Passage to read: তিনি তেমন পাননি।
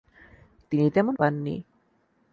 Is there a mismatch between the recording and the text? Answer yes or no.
no